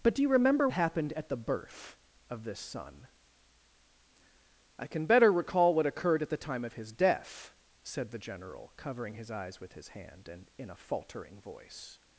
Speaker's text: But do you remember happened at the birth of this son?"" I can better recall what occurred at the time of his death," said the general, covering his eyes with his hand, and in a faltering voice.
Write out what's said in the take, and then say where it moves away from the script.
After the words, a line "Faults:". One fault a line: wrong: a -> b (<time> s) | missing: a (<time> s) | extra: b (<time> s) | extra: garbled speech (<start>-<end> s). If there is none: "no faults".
But do you remember happened at the birth of this son?"" I can better recall what occurred at the time of his death," said the general, covering his eyes with his hand, and in a faltering voice.
Faults:
no faults